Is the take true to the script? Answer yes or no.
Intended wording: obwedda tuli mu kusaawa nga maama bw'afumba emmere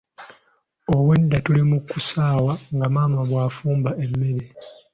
yes